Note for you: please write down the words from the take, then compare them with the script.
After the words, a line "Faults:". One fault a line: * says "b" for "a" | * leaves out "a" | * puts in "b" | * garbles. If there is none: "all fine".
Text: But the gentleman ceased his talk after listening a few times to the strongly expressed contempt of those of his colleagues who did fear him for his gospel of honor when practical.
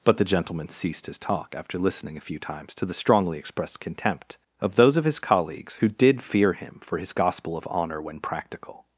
But the gentleman ceased his talk after listening a few times to the strongly expressed contempt of those of his colleagues who did fear him for his gospel of honor when practical.
Faults:
all fine